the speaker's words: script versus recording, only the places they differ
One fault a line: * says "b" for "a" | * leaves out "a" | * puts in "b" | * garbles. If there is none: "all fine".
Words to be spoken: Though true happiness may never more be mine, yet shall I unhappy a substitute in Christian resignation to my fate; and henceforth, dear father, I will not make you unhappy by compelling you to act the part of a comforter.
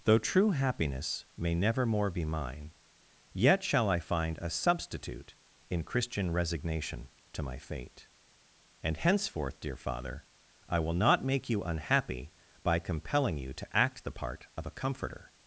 * says "find" for "unhappy"